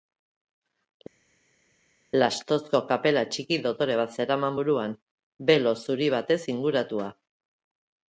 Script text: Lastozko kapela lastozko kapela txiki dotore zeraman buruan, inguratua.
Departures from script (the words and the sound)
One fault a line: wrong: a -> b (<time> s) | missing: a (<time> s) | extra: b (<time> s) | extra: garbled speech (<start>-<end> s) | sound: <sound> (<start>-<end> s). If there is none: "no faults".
missing: lastozko kapela (3.2 s)
extra: bat (4.0 s)
extra: belo zuri batez (5.5 s)